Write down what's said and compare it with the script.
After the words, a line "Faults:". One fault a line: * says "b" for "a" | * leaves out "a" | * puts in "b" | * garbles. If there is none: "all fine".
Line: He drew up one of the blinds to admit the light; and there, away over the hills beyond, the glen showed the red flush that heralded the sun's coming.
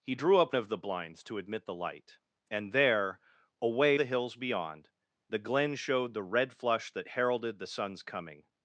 He drew up of the blinds to admit the light; and there, away the hills beyond, the glen showed the red flush that heralded the sun's coming.
Faults:
* leaves out "one"
* leaves out "over"